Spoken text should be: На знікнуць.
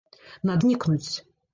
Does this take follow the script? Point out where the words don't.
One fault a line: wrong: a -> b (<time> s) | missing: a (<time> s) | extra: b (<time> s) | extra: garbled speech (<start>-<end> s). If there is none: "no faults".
no faults